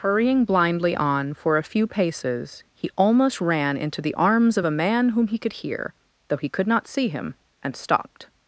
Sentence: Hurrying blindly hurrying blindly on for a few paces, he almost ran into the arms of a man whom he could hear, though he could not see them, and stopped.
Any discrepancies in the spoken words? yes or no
yes